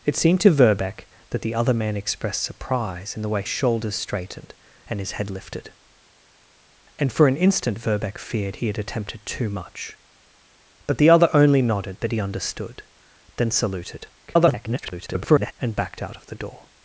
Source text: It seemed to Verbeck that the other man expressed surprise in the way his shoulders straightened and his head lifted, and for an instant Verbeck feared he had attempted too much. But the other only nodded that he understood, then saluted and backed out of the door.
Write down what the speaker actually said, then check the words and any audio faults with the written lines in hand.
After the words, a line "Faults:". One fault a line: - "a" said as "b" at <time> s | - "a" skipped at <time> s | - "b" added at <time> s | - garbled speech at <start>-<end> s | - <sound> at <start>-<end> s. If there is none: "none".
It seemed to Verbeck that the other man expressed surprise in the way shoulders straightened and his head lifted, and for an instant Verbeck feared he had attempted too much. But the other only nodded that he understood, then saluted [garbled] and backed out of the door.
Faults:
- "his" skipped at 3.4 s
- garbled speech at 14.3-15.5 s